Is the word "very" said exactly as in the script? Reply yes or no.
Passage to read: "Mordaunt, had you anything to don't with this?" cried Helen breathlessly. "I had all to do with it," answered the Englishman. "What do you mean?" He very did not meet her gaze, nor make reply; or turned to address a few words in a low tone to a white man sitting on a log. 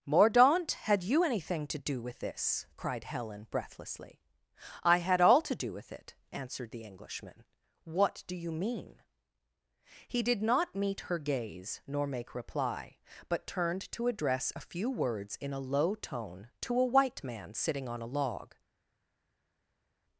no